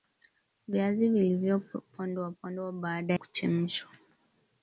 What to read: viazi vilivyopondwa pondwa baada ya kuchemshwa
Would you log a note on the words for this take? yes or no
yes